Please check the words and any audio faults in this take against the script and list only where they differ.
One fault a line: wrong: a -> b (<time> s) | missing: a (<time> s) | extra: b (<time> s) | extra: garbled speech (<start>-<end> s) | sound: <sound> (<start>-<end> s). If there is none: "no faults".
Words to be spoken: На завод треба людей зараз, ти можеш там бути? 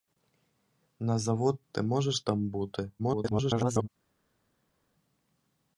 missing: треба людей зараз (1.6 s)
extra: garbled speech (3.0-3.9 s)